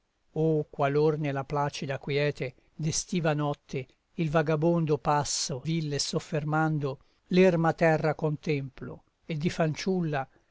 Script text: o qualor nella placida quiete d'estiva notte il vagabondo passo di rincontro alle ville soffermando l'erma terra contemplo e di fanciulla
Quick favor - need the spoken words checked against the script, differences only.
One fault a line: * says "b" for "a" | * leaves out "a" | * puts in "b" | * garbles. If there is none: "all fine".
* leaves out "di rincontro alle"